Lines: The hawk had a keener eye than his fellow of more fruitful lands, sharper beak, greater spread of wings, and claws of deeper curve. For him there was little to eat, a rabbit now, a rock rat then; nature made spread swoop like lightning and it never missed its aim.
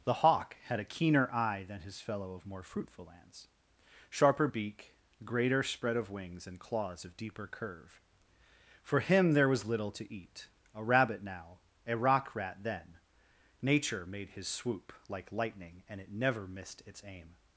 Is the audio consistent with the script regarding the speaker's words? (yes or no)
no